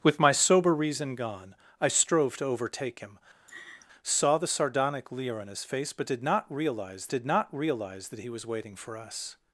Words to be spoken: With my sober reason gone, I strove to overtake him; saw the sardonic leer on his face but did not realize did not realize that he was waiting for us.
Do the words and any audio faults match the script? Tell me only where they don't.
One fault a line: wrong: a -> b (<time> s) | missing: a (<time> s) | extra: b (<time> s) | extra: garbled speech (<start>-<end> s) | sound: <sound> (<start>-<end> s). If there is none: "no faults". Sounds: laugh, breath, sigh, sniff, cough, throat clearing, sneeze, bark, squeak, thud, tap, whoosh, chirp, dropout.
sound: laugh (3.5-3.9 s)